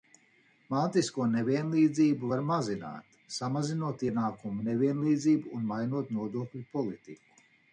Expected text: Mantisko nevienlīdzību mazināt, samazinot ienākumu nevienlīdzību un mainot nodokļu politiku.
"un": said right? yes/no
yes